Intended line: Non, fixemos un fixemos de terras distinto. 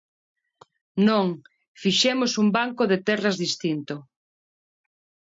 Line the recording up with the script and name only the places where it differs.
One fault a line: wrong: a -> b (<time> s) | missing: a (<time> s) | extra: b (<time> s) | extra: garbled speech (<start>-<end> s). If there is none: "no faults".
wrong: fixemos -> banco (2.6 s)